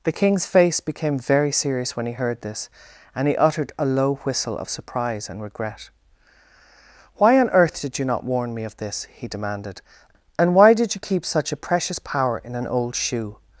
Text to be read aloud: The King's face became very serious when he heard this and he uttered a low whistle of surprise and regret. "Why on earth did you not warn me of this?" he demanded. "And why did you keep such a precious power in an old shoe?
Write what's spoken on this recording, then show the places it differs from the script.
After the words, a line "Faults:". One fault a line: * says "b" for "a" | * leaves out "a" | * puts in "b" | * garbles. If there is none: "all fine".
The King's face became very serious when he heard this and he uttered a low whistle of surprise and regret. "Why on earth did you not warn me of this?" he demanded. "And why did you keep such a precious power in an old shoe?
Faults:
all fine